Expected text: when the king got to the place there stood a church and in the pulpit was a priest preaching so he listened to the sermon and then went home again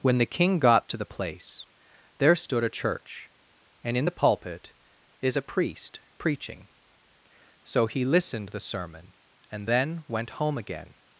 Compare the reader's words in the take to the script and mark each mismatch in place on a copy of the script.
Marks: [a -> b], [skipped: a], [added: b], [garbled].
when the king got to the place there stood a church and in the pulpit [was -> is] a priest preaching so he listened [skipped: to] the sermon and then went home again